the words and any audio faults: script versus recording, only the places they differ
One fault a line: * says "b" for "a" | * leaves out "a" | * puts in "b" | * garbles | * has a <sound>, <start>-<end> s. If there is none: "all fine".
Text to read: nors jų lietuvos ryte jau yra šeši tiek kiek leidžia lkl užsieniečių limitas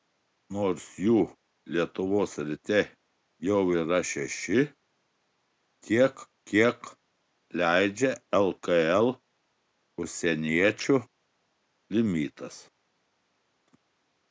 all fine